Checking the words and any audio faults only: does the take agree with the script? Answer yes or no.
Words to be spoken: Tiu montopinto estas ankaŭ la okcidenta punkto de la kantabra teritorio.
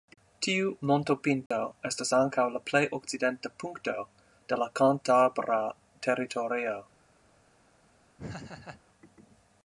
no